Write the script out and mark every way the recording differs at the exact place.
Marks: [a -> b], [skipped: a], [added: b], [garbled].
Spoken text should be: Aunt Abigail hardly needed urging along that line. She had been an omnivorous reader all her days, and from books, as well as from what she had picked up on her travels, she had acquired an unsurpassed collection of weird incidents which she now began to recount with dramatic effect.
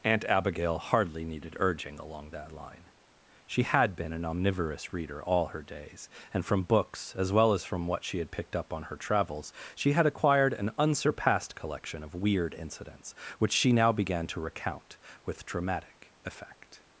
Aunt Abigail hardly needed urging along that line. She had been an omnivorous reader all her days, and from books, as well as from what she had picked up on her travels, she had acquired an unsurpassed collection of weird incidents which she now began to recount with dramatic effect.